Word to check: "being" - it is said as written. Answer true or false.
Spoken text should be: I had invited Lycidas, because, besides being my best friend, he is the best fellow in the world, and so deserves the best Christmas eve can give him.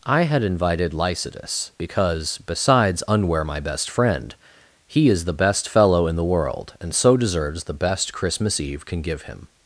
false